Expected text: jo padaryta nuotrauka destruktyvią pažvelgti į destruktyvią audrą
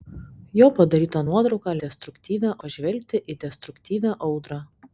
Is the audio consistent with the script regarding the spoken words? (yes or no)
yes